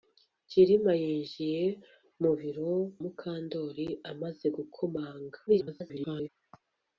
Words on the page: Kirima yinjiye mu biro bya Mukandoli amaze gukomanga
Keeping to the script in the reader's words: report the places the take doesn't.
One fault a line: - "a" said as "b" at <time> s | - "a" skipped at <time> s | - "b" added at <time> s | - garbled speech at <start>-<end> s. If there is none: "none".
- "bya" skipped at 2.7 s
- garbled speech at 5.5-6.3 s